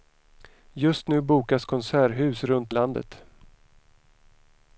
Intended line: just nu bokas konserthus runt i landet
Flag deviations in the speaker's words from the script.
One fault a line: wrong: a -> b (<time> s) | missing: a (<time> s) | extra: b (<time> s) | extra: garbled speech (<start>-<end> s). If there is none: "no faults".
no faults